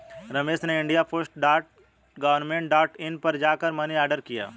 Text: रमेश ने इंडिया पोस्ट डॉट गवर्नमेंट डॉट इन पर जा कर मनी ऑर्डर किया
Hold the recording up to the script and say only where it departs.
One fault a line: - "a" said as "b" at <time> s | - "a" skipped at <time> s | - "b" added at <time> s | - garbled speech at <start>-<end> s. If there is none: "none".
none